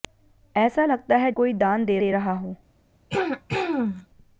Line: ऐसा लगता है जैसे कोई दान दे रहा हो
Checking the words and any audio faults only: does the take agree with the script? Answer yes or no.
no